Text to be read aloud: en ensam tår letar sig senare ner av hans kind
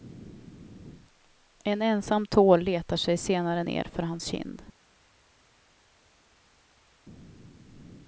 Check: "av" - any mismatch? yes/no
yes